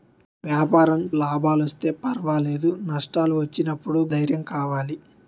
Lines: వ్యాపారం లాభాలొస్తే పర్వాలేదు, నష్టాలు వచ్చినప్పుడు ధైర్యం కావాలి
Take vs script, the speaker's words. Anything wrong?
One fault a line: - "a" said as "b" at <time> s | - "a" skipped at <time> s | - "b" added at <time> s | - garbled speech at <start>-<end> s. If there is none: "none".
none